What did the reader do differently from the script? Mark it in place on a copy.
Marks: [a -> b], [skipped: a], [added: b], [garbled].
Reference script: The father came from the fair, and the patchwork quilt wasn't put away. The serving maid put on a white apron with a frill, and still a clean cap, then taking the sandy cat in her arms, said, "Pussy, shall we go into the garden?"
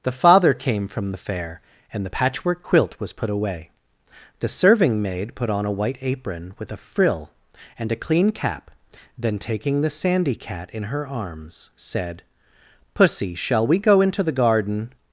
The father came from the fair, and the patchwork quilt [wasn't -> was] put away. The serving maid put on a white apron with a frill, and [skipped: still] a clean cap, then taking the sandy cat in her arms, said, "Pussy, shall we go into the garden?"